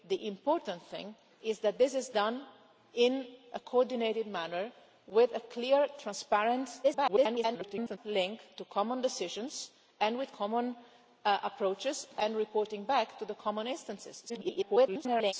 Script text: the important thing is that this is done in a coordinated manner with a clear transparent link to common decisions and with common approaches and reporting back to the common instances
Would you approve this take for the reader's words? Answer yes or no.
no